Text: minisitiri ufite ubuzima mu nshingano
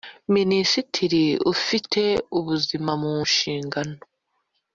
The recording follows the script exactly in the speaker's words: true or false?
true